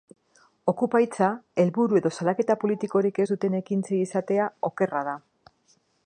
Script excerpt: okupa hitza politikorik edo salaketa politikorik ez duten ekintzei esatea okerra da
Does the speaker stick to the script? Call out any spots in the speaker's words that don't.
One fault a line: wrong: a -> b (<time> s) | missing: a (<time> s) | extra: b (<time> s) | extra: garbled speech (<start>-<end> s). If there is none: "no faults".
wrong: politikorik -> helburu (1.6 s)